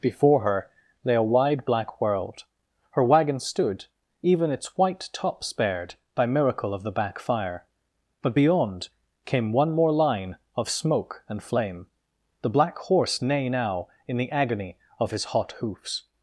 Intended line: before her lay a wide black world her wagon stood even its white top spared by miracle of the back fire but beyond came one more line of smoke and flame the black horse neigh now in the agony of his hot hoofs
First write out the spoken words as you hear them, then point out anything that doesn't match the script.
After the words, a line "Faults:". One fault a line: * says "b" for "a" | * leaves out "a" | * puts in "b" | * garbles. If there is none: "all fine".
before her lay a wide black world her wagon stood even its white top spared by miracle of the back fire but beyond came one more line of smoke and flame the black horse neigh now in the agony of his hot hoofs
Faults:
all fine